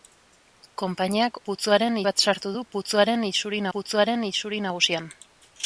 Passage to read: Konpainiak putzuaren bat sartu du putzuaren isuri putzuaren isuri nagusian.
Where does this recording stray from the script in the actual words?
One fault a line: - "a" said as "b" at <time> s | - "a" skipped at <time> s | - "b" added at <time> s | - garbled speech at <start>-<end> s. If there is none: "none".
none